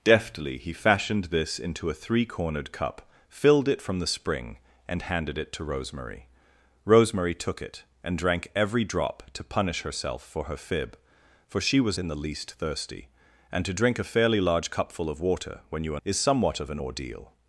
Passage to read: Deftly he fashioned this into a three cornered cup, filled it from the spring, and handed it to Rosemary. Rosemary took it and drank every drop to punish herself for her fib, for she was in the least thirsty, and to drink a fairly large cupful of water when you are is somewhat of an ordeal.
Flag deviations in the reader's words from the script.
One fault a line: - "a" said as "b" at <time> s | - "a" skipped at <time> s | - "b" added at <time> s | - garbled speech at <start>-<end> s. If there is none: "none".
none